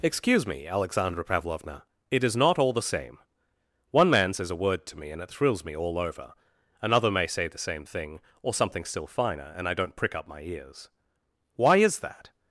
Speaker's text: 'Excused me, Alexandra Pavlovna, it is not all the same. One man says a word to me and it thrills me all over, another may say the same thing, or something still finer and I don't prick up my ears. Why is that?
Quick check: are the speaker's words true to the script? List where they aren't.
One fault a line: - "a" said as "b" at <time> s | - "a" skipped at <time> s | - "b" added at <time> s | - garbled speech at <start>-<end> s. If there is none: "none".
- "Excused" said as "Excuse" at 0.0 s